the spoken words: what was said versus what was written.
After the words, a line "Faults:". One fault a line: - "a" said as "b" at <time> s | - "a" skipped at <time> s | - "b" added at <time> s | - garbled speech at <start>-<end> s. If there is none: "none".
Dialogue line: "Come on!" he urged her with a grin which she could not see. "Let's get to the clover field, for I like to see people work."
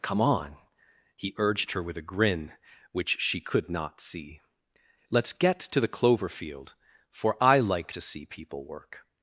"Come on!" he urged her with a grin which she could not see. "Let's get to the clover field, for I like to see people work."
Faults:
none